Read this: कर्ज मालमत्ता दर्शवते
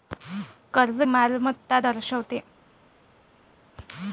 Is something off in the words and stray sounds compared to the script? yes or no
no